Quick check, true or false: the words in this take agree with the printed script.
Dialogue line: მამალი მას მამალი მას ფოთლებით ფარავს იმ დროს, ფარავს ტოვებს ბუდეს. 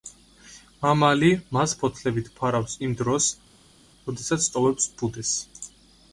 false